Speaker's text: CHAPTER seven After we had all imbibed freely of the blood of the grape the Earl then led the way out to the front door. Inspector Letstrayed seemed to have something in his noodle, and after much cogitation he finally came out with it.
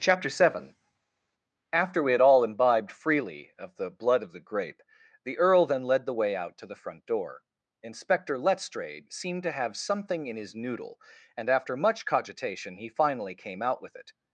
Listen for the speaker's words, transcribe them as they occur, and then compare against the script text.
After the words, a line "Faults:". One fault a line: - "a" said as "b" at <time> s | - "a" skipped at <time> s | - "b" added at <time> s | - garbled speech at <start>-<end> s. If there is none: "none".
CHAPTER seven After we had all imbibed freely of the blood of the grape the Earl then led the way out to the front door. Inspector Letstrayed seemed to have something in his noodle, and after much cogitation he finally came out with it.
Faults:
none